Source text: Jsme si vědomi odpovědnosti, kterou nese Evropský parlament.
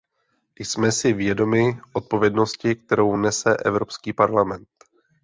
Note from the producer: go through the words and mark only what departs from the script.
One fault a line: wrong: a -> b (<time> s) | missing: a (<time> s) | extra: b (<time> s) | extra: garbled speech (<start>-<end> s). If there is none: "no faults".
no faults